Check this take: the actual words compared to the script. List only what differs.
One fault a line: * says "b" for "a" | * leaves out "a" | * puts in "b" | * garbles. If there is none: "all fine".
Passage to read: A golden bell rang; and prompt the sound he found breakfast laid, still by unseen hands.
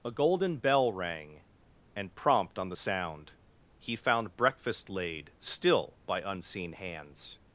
* puts in "on"